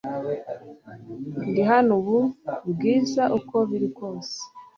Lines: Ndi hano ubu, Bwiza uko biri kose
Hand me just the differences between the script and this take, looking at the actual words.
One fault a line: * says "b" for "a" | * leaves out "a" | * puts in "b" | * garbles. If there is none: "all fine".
all fine